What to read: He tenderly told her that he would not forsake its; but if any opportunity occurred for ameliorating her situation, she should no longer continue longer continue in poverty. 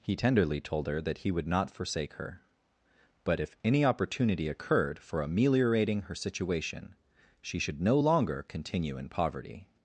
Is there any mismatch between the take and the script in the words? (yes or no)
yes